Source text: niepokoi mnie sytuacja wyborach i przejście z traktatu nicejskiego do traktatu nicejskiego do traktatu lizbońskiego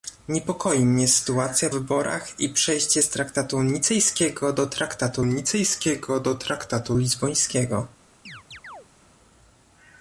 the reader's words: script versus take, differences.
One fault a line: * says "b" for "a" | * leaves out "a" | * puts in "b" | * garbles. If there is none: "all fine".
all fine